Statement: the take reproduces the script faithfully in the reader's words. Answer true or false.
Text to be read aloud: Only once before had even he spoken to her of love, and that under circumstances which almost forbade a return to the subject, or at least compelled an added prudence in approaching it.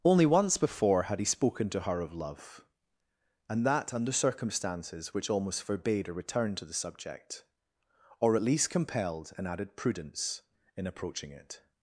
false